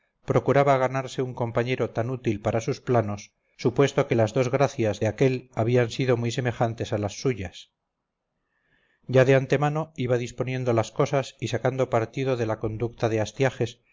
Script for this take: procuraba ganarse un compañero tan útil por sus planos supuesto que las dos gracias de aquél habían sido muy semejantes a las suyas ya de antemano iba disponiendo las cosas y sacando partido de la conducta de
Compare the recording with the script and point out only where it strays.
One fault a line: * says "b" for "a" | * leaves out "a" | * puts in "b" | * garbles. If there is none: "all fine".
* says "para" for "por"